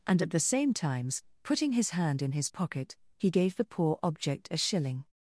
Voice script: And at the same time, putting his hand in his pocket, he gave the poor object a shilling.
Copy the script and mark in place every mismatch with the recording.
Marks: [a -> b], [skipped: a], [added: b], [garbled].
And at the same [time, -> times] putting his hand in his pocket, he gave the poor object a shilling.